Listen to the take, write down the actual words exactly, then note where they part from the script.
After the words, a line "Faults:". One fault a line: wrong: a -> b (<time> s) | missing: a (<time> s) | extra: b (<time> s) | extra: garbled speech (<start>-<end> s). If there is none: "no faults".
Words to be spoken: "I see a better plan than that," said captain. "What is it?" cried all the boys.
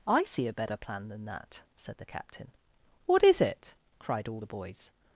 "I see a better plan than that," said the captain. "What is it?" cried all the boys.
Faults:
extra: the (2.0 s)